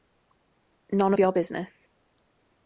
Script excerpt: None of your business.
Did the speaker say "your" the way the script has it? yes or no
yes